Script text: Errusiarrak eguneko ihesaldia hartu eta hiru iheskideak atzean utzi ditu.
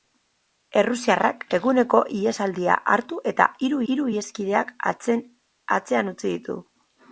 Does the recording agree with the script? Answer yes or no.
no